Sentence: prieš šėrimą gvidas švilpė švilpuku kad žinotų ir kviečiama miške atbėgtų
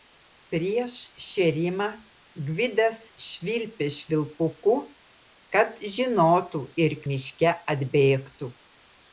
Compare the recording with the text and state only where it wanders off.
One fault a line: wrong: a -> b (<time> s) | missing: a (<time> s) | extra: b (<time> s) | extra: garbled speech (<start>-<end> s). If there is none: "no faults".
missing: kviečiama (7.0 s)